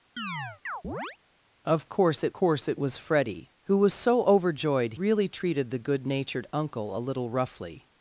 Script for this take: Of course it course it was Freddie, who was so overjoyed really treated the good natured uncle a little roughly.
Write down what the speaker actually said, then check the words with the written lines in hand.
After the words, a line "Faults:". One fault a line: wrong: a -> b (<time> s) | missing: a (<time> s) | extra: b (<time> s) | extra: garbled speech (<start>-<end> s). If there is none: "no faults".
Of course it course it was Freddie, who was so overjoyed really treated the good natured uncle a little roughly.
Faults:
no faults